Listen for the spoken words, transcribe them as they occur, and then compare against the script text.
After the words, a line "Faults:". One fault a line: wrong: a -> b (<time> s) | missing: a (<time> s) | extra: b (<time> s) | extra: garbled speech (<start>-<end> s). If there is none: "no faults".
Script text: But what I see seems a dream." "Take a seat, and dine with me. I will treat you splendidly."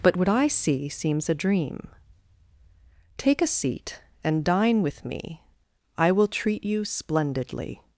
But what I see seems a dream." "Take a seat, and dine with me. I will treat you splendidly."
Faults:
no faults